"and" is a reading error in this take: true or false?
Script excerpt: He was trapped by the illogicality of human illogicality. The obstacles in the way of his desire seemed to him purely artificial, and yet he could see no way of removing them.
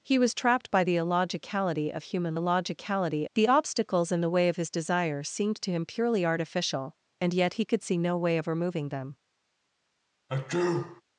false